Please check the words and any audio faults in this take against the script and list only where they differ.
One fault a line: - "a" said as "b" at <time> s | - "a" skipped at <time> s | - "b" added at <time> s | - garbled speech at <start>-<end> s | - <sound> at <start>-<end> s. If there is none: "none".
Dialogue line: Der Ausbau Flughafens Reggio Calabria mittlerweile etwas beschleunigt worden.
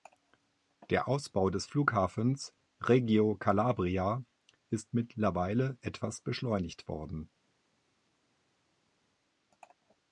- "des" added at 1.5 s
- "ist" added at 4.7 s